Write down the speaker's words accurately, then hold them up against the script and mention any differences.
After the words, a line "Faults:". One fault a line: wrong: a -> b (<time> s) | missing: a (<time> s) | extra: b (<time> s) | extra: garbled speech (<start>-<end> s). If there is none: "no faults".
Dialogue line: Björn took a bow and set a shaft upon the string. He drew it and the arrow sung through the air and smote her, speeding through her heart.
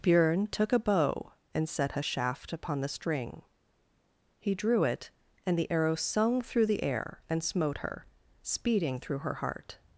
Björn took a bow and set a shaft upon the string. He drew it and the arrow sung through the air and smote her, speeding through her heart.
Faults:
no faults